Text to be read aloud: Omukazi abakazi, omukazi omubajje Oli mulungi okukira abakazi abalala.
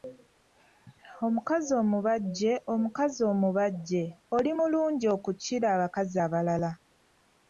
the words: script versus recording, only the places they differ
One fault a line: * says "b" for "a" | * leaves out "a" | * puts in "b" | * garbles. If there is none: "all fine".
* says "omubajje" for "abakazi"